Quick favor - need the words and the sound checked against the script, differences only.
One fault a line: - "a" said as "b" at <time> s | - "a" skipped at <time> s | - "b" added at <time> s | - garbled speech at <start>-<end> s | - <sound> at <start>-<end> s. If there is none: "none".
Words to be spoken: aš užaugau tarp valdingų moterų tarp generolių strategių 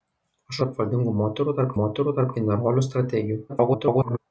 - "užaugau" skipped at 0.6 s
- "moterų tarp" added at 1.8 s
- garbled speech at 3.5-4.2 s